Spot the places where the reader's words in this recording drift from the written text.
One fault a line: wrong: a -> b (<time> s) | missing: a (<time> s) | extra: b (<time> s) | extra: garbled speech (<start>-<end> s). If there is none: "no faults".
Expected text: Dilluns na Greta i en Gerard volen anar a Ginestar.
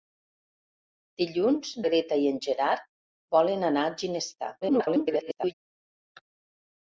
missing: na (1.7 s)
extra: garbled speech (4.6-5.5 s)